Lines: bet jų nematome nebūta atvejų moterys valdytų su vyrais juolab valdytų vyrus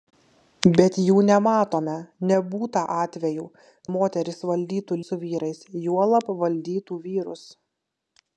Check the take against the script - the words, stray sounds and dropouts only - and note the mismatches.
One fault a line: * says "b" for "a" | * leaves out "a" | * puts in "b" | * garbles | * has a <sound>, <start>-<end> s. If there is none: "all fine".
all fine